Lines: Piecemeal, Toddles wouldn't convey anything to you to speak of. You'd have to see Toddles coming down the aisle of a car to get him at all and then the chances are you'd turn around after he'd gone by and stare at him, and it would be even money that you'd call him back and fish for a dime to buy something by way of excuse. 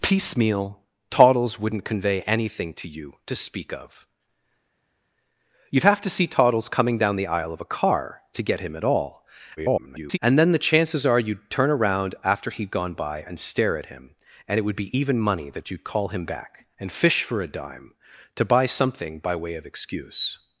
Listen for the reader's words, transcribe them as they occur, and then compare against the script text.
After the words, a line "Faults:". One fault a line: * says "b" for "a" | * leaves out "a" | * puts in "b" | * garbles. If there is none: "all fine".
Piecemeal, Toddles wouldn't convey anything to you to speak of. You'd have to see Toddles coming down the aisle of a car to get him at all [garbled] and then the chances are you'd turn around after he'd gone by and stare at him, and it would be even money that you'd call him back and fish for a dime to buy something by way of excuse.
Faults:
* garbles